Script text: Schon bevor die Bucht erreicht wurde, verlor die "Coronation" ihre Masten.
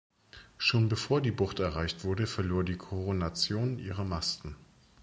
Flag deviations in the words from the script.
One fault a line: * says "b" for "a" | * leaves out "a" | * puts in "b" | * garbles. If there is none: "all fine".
all fine